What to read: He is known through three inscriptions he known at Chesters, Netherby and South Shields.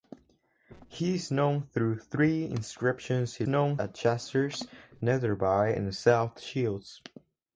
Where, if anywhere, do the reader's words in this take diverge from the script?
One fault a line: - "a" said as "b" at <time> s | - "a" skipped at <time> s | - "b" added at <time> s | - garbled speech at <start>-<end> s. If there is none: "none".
none